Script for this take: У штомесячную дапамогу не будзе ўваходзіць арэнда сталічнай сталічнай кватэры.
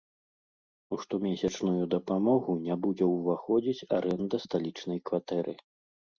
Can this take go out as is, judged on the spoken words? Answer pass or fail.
fail